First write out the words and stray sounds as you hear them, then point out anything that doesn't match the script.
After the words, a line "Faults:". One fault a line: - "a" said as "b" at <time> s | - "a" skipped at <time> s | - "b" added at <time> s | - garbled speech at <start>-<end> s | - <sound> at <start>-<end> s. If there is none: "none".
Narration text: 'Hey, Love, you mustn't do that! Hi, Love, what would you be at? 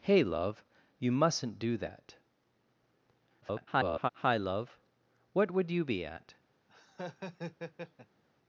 'Hey, Love, you mustn't do that! [garbled] Hi, Love, what would you be at?
Faults:
- garbled speech at 3.4-4.1 s
- laugh at 6.7-8.2 s